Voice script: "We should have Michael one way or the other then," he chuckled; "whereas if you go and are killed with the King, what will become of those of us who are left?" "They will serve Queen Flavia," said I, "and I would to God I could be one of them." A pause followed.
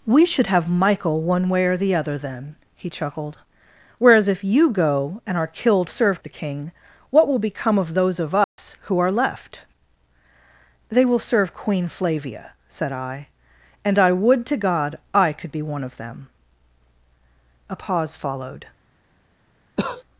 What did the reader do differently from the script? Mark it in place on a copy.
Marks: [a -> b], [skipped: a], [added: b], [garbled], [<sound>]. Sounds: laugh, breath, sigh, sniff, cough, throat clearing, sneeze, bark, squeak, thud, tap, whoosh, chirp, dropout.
"We should have Michael one way or the other then," he chuckled; "whereas if you go and are killed [with -> serve] the King, what will become of those of us [dropout] who are left?" "They will serve Queen Flavia," said I, "and I would to God I could be one of them." A pause followed. [cough]